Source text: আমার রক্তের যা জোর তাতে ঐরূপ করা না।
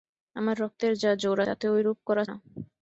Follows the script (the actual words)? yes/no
yes